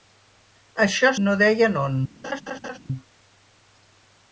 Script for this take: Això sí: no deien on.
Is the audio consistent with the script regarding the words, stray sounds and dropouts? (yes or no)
no